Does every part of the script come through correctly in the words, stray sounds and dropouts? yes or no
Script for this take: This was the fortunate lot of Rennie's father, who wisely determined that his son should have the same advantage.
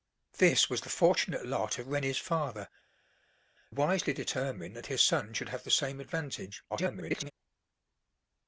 no